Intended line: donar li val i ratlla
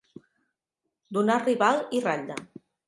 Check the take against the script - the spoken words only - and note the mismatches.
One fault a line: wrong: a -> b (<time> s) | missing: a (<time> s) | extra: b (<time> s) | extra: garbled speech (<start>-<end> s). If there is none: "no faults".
no faults